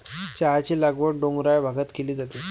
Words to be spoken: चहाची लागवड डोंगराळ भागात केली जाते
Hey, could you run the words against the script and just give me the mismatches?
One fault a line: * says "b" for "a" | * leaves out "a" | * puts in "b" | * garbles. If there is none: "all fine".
all fine